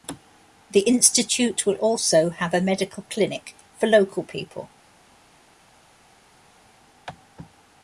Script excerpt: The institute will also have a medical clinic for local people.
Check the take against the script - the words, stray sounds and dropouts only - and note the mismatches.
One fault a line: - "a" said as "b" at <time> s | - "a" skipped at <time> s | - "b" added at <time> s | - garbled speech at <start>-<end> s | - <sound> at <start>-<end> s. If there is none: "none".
none